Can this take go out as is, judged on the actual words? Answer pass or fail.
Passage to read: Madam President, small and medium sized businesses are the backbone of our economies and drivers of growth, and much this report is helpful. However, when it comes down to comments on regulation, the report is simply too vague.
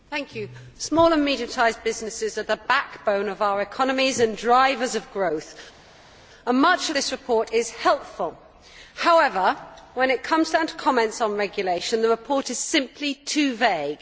pass